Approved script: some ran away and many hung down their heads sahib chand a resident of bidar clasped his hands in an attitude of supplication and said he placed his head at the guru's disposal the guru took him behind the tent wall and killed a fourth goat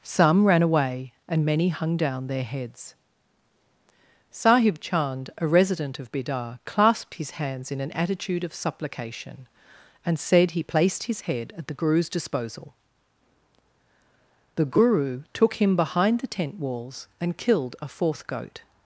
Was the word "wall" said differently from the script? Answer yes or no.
yes